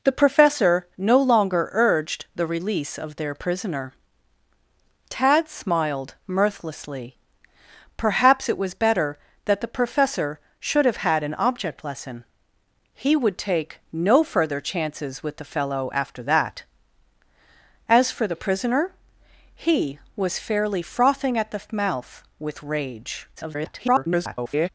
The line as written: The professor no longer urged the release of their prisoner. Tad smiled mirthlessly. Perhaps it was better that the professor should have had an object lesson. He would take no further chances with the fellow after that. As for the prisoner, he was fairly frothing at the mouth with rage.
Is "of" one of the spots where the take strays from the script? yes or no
no